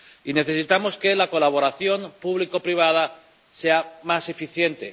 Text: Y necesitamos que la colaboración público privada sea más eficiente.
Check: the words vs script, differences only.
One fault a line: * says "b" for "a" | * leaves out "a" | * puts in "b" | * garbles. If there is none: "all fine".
all fine